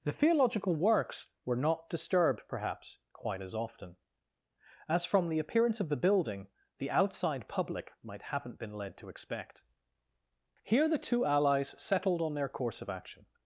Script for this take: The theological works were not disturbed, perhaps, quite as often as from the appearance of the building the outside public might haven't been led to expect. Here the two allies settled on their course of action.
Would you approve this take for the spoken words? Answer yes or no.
yes